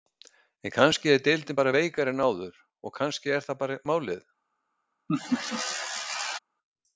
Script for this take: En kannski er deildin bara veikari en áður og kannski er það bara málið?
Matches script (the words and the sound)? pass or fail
fail